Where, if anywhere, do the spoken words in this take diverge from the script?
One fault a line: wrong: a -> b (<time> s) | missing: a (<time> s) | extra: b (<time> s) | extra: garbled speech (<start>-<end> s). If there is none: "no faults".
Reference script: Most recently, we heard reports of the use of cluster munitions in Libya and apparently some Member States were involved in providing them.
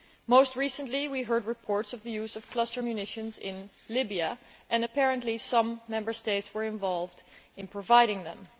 no faults